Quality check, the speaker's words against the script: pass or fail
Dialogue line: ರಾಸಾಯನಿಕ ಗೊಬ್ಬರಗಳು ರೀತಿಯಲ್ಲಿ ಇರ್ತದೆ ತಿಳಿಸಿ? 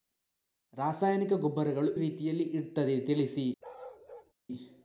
pass